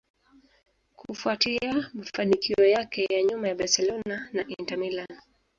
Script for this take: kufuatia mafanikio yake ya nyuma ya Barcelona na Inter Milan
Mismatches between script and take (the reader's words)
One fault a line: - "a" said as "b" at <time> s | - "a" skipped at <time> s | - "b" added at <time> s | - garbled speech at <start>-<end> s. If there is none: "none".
none